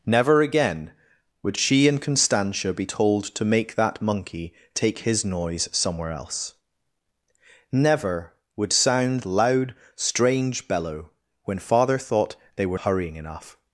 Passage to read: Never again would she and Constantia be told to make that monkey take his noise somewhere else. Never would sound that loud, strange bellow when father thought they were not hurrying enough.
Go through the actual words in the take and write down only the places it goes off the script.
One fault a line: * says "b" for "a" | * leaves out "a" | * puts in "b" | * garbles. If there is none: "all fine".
* leaves out "that"
* leaves out "not"